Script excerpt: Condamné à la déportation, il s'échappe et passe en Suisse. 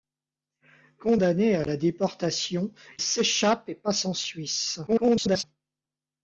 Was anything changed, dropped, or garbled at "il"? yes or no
yes